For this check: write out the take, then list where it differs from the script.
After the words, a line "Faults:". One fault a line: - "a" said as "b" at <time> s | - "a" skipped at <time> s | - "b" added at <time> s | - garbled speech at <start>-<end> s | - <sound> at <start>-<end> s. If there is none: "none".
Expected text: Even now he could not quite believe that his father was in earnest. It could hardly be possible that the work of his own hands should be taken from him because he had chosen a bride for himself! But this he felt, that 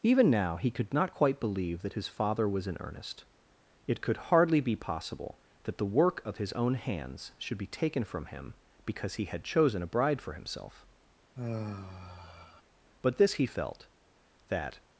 Even now he could not quite believe that his father was in earnest. It could hardly be possible that the work of his own hands should be taken from him because he had chosen a bride for himself! But this he felt, that
Faults:
- sigh at 11.3-12.6 s